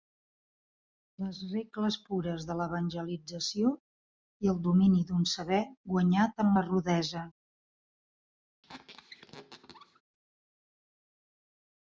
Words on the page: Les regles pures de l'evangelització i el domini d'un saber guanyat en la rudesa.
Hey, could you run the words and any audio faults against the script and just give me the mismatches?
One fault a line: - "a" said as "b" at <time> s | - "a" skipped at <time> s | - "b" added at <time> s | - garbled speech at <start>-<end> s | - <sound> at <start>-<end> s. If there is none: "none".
- squeak at 8.6-10.0 s